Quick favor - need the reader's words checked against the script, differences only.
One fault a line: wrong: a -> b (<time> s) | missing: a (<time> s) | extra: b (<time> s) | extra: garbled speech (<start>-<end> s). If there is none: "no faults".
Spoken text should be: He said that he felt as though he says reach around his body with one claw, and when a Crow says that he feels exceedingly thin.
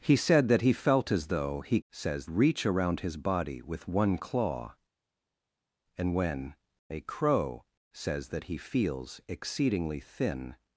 no faults